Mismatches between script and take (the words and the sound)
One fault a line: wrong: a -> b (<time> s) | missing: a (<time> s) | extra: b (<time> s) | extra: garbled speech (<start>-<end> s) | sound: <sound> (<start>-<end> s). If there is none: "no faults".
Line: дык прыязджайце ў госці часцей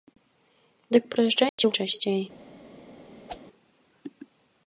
sound: dropout (1.5-1.6 s)
missing: госці (1.7 s)
sound: whoosh (3.3-3.4 s)